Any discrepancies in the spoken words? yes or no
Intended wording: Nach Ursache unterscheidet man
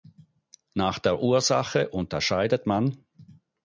yes